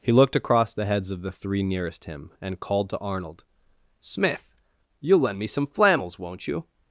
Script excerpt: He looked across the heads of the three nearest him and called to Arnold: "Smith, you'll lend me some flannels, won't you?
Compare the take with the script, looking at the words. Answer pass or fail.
pass